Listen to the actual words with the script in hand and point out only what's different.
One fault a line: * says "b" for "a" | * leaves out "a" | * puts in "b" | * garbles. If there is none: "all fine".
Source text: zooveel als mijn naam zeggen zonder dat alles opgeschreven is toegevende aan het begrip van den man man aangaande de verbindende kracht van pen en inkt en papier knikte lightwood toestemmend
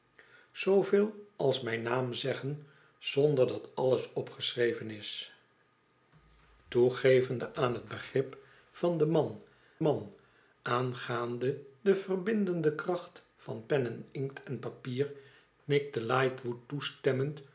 all fine